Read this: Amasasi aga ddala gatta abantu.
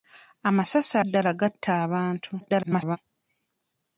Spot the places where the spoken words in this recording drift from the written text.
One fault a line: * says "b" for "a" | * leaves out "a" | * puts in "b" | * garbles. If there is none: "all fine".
* leaves out "aga"
* garbles